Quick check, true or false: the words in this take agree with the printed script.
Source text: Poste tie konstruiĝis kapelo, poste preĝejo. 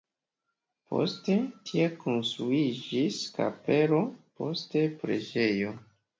true